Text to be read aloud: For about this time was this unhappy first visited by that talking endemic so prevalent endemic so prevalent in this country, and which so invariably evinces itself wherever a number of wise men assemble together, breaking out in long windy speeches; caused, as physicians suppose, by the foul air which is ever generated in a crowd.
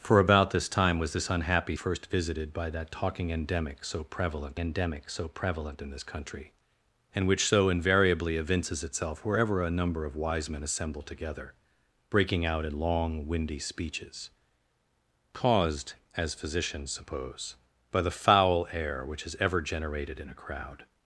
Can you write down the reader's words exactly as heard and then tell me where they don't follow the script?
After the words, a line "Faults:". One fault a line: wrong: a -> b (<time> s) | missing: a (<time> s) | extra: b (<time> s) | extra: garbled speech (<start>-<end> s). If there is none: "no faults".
For about this time was this unhappy first visited by that talking endemic so prevalent endemic so prevalent in this country, and which so invariably evinces itself wherever a number of wise men assemble together, breaking out in long windy speeches; caused, as physicians suppose, by the foul air which is ever generated in a crowd.
Faults:
no faults